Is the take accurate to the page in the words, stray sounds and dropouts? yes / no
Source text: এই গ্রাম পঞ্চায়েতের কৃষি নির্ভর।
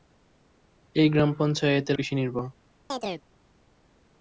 no